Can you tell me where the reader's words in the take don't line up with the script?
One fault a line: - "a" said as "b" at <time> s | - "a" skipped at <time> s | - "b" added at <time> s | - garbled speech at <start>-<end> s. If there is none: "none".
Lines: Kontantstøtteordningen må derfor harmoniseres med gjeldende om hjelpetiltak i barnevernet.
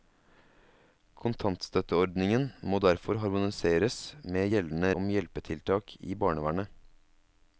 none